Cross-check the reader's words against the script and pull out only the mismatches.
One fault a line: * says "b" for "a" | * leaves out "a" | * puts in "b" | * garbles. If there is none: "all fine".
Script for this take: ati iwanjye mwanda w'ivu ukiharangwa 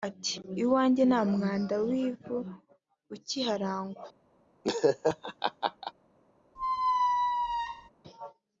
* puts in "nta"